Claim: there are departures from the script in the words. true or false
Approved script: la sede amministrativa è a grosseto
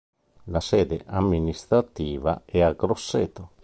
false